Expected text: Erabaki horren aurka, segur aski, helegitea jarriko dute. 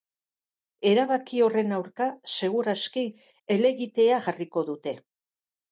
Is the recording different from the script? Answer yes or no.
no